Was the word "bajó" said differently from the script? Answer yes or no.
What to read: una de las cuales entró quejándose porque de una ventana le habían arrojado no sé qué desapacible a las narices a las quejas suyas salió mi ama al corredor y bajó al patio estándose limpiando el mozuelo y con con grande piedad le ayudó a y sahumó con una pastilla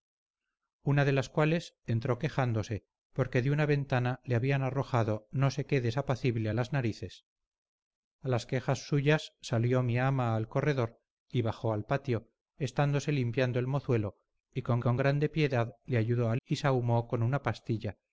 no